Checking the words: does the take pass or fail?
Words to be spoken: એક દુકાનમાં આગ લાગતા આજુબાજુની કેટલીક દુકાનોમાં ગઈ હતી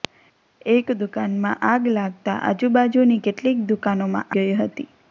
pass